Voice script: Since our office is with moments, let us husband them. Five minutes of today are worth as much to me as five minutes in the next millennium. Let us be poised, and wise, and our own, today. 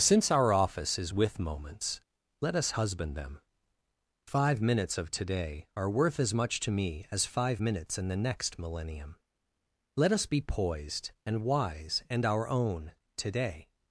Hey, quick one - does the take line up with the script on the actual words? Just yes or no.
yes